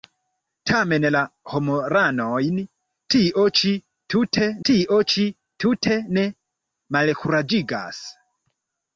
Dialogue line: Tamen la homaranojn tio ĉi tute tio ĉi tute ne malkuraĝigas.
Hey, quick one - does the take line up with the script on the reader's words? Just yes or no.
yes